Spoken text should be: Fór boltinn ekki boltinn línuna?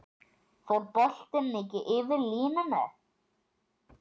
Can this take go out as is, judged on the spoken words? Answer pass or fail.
fail